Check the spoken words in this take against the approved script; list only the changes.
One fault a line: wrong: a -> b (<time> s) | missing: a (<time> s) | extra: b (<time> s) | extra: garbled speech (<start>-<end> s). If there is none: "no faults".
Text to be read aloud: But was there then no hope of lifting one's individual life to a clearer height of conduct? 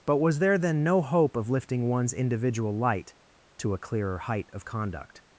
wrong: life -> light (2.8 s)